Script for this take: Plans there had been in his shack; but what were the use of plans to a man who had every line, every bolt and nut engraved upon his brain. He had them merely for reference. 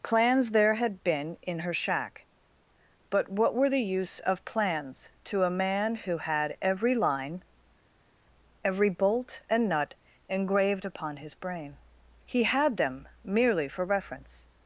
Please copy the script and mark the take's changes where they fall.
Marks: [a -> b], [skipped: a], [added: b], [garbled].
Plans there had been in [his -> her] shack; but what were the use of plans to a man who had every line, every bolt and nut engraved upon his brain. He had them merely for reference.